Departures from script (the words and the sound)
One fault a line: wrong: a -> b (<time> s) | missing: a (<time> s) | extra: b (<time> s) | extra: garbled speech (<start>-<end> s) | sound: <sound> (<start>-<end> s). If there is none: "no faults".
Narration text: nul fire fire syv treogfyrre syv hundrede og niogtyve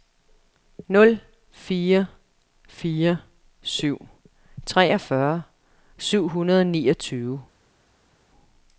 no faults